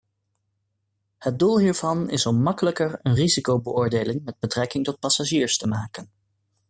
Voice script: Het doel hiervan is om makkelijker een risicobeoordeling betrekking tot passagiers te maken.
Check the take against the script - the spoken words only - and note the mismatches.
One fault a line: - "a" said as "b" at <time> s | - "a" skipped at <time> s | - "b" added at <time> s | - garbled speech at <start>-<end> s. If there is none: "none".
- "met" added at 4.2 s